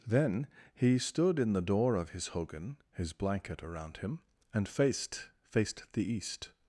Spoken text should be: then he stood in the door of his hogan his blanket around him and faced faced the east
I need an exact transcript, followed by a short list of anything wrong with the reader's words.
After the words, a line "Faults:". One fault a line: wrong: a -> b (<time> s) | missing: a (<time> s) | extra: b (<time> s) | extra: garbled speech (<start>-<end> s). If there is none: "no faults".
then he stood in the door of his hogan his blanket around him and faced faced the east
Faults:
no faults